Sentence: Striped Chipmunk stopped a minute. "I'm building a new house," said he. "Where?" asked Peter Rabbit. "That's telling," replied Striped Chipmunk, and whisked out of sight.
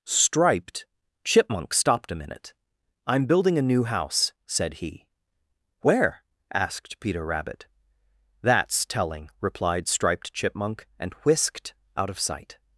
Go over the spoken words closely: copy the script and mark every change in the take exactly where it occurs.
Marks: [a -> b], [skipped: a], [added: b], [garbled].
Striped Chipmunk stopped a minute. "I'm building a new house," said he. "Where?" asked Peter Rabbit. "That's telling," replied Striped Chipmunk, and whisked out of sight.